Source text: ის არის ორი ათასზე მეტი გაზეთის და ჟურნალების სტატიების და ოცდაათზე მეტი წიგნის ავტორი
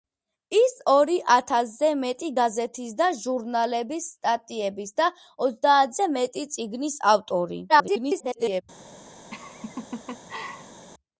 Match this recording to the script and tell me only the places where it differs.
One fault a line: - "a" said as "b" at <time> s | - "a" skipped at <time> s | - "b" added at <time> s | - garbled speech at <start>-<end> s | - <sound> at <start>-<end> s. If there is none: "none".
- "არის" skipped at 0.7 s
- garbled speech at 7.7-8.6 s
- laugh at 9.3-10.9 s